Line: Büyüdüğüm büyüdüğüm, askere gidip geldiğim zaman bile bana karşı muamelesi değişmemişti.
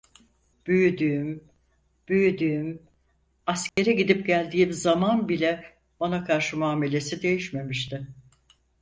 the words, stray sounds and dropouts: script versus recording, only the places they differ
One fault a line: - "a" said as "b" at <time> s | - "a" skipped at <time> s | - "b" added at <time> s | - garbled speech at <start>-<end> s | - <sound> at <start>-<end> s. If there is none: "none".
- dropout at 3.7-3.8 s